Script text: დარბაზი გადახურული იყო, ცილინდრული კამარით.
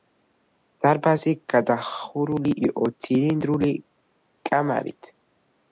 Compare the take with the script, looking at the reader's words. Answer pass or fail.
pass